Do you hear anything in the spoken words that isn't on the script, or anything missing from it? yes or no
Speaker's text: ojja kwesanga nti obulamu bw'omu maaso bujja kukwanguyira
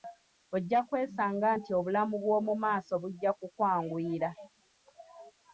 no